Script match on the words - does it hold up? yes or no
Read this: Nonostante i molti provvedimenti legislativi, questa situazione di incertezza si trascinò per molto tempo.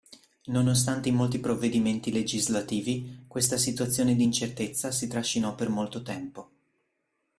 yes